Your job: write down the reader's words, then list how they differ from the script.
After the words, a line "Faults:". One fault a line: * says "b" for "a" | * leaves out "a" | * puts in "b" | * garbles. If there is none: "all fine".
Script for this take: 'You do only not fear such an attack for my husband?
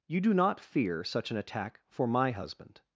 'You do not fear such an attack for my husband?
Faults:
* leaves out "only"